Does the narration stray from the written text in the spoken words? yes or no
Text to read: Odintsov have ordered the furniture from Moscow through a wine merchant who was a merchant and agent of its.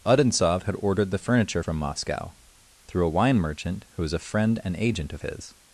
yes